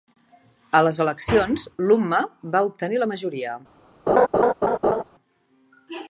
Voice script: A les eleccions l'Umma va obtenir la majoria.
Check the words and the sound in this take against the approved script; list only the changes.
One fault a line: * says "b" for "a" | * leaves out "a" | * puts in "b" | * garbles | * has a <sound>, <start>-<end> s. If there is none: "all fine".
* has a laugh, 4.1-5.0 s